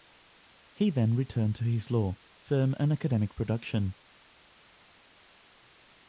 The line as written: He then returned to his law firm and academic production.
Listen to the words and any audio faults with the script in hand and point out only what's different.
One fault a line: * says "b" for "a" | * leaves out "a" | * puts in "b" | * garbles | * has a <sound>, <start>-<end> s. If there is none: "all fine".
all fine